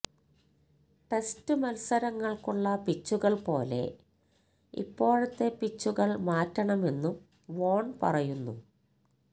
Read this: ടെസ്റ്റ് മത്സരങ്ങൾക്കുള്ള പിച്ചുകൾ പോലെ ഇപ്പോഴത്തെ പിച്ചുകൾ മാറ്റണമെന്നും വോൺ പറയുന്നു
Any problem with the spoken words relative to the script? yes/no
no